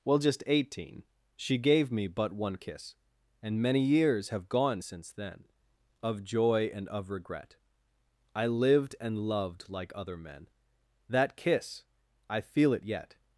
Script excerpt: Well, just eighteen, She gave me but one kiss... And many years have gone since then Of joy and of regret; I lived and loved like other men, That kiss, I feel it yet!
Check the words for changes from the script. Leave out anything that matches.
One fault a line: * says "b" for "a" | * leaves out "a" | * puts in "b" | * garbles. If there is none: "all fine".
all fine